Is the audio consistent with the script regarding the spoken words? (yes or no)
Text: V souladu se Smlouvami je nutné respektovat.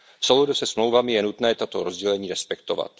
no